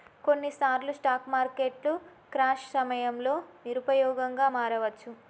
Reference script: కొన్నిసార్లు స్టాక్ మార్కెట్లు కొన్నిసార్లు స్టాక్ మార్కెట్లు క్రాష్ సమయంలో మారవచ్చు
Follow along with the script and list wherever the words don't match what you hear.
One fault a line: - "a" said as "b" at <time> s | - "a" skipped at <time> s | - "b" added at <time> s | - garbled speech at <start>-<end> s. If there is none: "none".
- "కొన్నిసార్లు స్టాక్ మార్కెట్లు" skipped at 1.9 s
- "నిరుపయోగంగా" added at 3.6 s